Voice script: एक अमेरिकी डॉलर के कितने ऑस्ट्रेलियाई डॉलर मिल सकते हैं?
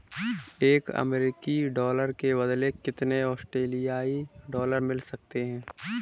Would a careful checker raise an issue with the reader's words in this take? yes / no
yes